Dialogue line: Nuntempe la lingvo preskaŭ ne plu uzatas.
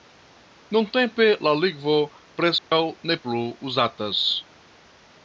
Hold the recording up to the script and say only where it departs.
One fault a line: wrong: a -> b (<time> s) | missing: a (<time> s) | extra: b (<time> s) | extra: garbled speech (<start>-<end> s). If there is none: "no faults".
no faults